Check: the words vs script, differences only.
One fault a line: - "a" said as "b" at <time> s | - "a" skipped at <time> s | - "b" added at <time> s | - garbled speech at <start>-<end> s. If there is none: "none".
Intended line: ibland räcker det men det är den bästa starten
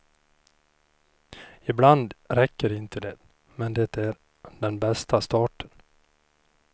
- "inte" added at 2.7 s